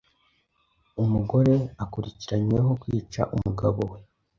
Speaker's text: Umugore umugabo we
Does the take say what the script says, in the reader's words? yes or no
no